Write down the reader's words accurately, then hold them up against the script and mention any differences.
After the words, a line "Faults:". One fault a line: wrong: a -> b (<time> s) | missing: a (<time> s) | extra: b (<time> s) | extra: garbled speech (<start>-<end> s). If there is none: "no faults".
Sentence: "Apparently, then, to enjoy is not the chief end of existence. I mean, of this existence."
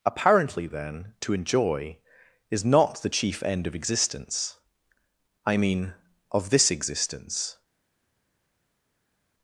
"Apparently, then, to enjoy is not the chief end of existence. I mean, of this existence."
Faults:
no faults